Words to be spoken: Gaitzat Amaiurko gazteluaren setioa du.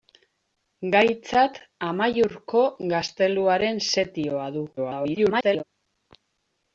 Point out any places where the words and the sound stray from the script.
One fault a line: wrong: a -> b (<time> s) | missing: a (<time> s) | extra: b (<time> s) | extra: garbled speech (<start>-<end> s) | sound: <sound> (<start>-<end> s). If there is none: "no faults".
extra: garbled speech (4.8-5.6 s)